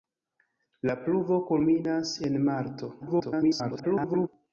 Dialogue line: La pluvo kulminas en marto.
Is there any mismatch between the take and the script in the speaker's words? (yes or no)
yes